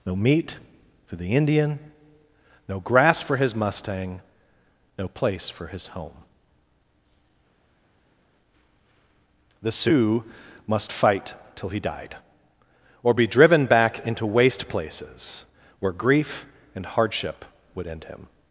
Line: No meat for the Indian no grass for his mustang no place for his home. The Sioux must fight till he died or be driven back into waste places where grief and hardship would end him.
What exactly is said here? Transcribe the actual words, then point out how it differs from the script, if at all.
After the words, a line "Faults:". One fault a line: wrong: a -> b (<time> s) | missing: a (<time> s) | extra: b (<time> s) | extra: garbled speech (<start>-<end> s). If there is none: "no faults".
No meat for the Indian no grass for his mustang no place for his home. The Sioux must fight till he died or be driven back into waste places where grief and hardship would end him.
Faults:
no faults